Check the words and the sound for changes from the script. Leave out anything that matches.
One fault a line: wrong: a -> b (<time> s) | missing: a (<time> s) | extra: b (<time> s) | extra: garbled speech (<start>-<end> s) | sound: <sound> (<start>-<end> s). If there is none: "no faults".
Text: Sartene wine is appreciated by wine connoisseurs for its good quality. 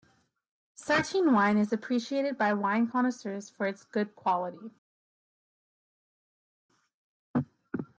no faults